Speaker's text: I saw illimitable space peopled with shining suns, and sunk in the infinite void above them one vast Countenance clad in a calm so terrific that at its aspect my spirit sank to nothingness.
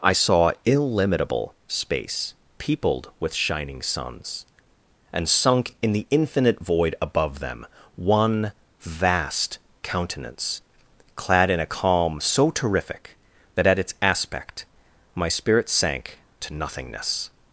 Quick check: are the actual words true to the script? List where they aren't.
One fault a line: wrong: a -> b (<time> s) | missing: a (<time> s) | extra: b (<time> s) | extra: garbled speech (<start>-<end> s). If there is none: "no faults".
no faults